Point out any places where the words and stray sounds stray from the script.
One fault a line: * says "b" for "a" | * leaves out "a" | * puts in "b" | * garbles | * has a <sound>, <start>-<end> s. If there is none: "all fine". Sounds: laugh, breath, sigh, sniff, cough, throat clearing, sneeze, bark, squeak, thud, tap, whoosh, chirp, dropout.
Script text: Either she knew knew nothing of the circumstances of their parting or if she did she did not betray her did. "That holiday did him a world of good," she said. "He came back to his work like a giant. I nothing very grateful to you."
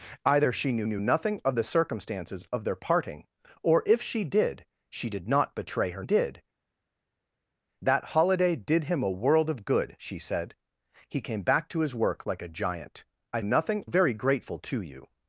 all fine